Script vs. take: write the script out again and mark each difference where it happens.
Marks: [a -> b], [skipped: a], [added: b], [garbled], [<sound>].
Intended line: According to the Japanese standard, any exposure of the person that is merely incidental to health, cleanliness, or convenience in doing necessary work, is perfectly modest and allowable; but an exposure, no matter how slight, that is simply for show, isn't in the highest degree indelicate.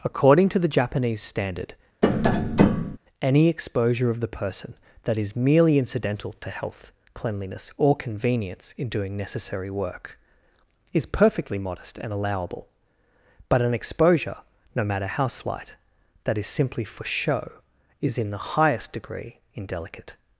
According to the Japanese standard, [tap] any exposure of the person that is merely incidental to health, cleanliness, or convenience in doing necessary work, is perfectly modest and allowable; but an exposure, no matter how slight, that is simply for show, [isn't -> is] in the highest degree indelicate.